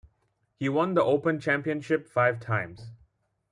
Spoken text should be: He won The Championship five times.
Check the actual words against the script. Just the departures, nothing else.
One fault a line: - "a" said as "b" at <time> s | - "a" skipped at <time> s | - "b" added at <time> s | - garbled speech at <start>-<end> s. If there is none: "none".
- "Open" added at 1.0 s